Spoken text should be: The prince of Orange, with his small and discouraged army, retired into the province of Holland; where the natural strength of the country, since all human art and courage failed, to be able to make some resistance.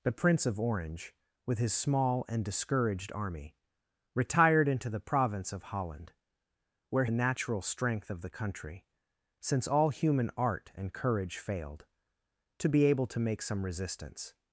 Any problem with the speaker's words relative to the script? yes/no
no